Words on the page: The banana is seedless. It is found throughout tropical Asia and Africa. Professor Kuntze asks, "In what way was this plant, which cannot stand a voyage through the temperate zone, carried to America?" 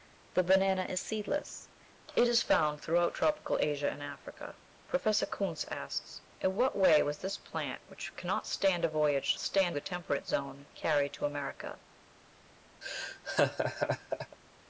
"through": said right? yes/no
no